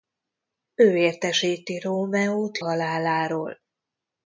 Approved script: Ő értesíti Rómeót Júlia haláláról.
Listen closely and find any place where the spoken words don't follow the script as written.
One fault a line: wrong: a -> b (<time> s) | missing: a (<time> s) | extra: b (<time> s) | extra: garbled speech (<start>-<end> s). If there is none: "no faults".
missing: Júlia (2.6 s)